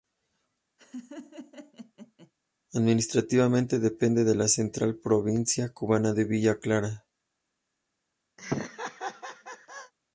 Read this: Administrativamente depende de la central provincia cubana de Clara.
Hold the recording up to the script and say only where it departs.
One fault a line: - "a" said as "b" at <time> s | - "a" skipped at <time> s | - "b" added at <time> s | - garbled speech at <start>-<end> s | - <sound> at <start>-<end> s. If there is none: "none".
- laugh at 0.8-2.3 s
- "Villa" added at 6.2 s
- laugh at 8.4-9.9 s